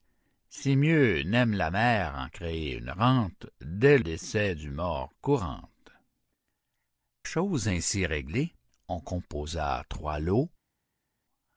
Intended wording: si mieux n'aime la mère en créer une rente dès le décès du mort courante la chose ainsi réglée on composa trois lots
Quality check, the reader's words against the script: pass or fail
fail